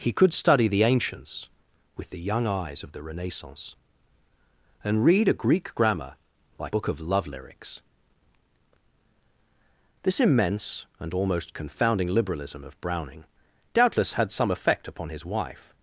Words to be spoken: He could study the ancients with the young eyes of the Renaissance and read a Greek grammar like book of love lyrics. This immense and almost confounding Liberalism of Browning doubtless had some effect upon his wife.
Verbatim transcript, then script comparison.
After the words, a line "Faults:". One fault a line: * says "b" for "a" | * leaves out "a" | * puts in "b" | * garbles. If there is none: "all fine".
He could study the ancients with the young eyes of the Renaissance and read a Greek grammar like book of love lyrics. This immense and almost confounding Liberalism of Browning doubtless had some effect upon his wife.
Faults:
all fine